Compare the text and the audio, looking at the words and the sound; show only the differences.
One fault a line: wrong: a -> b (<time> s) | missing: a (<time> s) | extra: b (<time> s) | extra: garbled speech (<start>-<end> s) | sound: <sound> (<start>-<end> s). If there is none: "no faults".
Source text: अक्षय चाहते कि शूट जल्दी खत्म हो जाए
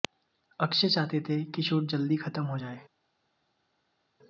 extra: थे (1.2 s)